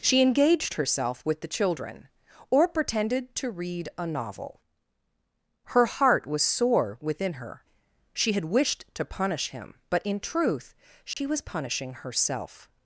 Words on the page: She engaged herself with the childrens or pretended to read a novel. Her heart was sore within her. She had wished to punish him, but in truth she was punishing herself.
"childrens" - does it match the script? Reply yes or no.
no